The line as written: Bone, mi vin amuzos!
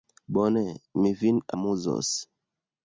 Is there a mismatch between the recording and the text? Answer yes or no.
no